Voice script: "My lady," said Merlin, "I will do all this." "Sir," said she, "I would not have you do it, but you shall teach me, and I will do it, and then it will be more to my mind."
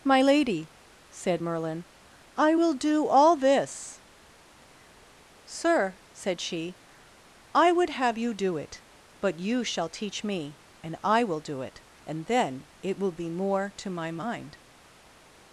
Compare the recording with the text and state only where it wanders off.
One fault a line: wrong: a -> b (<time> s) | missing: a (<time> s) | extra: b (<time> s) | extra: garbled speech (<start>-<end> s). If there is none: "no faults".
missing: not (7.9 s)